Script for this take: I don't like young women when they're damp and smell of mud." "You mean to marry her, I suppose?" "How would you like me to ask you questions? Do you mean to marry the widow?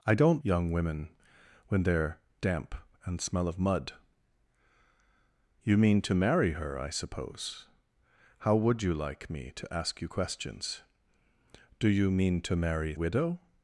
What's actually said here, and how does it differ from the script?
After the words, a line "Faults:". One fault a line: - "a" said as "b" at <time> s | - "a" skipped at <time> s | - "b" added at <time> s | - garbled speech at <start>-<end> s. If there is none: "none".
I don't young women when they're damp and smell of mud." "You mean to marry her, I suppose?" "How would you like me to ask you questions? Do you mean to marry widow?
Faults:
- "like" skipped at 0.4 s
- "the" skipped at 12.9 s